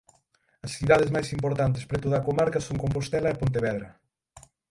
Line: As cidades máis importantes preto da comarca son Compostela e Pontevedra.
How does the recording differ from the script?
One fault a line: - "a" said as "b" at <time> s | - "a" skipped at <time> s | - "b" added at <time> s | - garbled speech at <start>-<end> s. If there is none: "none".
none